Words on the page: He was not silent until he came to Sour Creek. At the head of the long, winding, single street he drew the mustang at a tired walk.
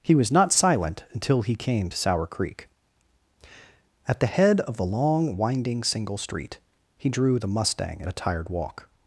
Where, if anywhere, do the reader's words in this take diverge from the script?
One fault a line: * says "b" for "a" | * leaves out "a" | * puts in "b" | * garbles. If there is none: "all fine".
all fine